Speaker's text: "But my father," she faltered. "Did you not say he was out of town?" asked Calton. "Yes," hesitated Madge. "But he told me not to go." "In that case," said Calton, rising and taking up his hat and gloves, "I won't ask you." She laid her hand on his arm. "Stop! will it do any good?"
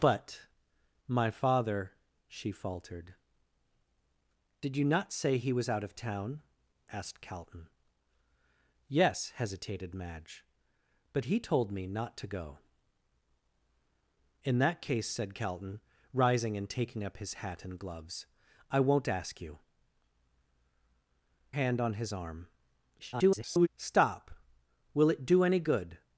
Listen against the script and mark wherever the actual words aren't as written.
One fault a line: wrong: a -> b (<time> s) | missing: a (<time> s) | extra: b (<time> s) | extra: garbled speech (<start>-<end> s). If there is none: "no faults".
missing: She laid her (19.6 s)
extra: garbled speech (23.0-23.7 s)